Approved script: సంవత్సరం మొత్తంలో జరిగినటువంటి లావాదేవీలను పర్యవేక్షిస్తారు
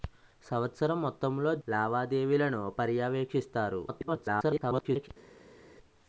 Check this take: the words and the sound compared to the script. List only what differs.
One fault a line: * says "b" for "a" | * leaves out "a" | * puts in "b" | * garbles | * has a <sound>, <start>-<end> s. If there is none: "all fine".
* leaves out "జరిగినటువంటి"
* garbles